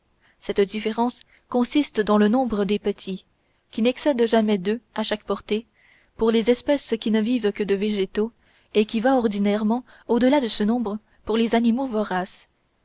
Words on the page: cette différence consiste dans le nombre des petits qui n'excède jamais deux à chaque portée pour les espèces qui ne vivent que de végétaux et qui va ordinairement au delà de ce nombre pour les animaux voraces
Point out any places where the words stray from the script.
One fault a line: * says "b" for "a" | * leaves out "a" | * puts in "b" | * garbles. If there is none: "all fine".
all fine